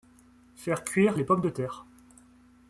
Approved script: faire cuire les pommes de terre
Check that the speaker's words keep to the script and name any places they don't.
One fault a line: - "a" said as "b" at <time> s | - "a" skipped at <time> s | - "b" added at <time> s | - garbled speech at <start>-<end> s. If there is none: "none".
none